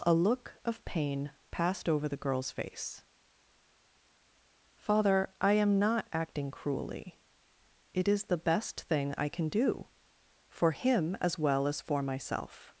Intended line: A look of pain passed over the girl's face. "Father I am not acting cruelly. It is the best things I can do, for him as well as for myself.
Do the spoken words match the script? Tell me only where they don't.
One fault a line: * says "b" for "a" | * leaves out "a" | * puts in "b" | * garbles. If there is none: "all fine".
* says "thing" for "things"